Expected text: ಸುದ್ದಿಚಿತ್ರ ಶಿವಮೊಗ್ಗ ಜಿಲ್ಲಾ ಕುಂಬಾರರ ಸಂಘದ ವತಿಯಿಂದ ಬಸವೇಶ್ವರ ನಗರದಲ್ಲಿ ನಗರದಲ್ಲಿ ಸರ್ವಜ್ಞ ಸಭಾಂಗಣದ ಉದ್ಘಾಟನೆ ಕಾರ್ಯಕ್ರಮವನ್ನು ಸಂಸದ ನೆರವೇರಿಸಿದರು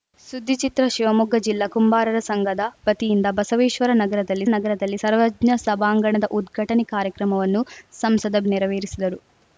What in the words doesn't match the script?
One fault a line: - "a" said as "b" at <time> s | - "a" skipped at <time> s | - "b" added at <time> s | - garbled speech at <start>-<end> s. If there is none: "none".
none